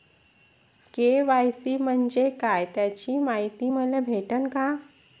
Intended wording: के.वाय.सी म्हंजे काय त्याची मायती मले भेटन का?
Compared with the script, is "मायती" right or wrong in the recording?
right